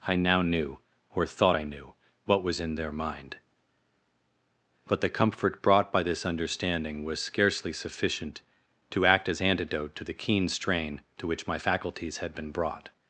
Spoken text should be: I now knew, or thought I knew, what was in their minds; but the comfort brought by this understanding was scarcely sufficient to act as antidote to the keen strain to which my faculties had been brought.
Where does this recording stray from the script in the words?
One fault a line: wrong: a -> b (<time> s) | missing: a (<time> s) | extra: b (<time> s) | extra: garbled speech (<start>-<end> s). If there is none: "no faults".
wrong: minds -> mind (2.9 s)